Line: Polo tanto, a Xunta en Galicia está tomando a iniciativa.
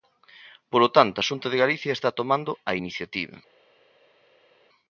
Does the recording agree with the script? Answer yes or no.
no